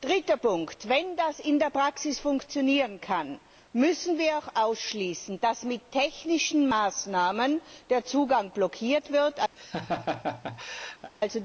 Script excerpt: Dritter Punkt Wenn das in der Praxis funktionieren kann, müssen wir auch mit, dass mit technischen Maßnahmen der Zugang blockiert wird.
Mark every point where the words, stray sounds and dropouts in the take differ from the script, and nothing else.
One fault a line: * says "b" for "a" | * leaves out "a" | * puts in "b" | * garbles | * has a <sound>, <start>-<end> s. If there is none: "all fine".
* says "ausschließen" for "mit"
* has a laugh, 9.6-11.1 s